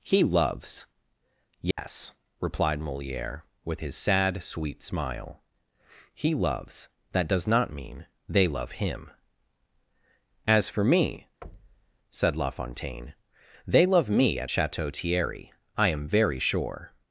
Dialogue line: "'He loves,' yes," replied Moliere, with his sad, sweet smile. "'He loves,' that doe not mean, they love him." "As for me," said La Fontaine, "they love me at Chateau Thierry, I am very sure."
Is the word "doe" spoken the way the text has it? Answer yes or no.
no